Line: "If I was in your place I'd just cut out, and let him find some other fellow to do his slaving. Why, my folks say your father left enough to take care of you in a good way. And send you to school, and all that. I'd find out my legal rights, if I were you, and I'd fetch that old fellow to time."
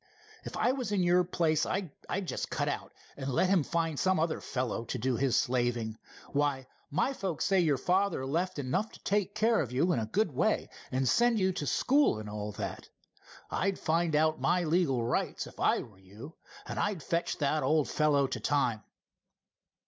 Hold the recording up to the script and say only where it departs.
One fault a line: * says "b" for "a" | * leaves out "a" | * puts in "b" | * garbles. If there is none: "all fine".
all fine